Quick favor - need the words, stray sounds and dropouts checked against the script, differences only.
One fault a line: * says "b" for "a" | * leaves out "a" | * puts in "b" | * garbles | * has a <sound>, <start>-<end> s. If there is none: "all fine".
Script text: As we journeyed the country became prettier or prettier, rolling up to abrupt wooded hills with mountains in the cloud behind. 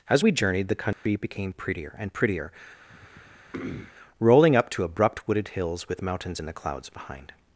* has a dropout, 0.9-1.1 s
* says "and" for "or"
* has a throat clearing, 2.9-3.9 s
* says "clouds" for "cloud"